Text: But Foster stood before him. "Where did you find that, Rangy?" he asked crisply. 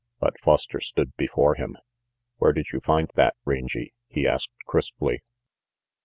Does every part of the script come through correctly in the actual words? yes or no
yes